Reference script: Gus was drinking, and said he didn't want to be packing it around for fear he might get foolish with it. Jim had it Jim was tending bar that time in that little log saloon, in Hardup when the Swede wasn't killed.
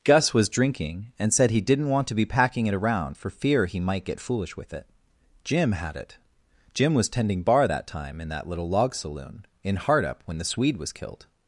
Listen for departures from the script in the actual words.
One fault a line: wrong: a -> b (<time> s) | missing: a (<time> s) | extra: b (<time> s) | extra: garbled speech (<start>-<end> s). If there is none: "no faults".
wrong: wasn't -> was (10.8 s)